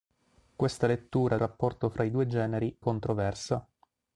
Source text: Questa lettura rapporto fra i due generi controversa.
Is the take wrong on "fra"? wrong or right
right